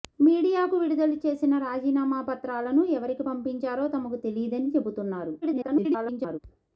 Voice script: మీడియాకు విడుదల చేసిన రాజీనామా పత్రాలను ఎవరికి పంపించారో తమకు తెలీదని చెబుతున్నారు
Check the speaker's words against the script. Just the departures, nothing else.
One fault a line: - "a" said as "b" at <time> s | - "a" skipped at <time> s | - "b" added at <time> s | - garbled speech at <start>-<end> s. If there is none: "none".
- garbled speech at 5.4-6.4 s